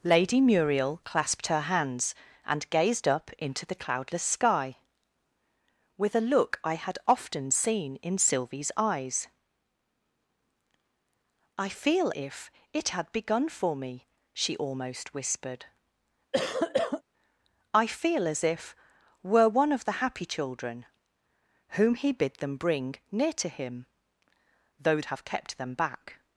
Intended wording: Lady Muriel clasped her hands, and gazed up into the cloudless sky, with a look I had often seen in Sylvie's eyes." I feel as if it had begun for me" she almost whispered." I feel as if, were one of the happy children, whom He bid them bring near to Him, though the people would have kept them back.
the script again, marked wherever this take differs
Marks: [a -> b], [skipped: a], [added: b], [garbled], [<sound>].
Lady Muriel clasped her hands, and gazed up into the cloudless sky, with a look I had often seen in Sylvie's eyes." I feel [skipped: as] if it had begun for me" she almost whispered." [cough] I feel as if, were one of the happy children, whom He bid them bring near to Him, though [skipped: the people would] have kept them back.